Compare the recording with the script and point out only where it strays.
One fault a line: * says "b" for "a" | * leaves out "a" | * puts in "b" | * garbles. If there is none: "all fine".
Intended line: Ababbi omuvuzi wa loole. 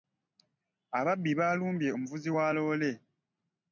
* puts in "baalumbye"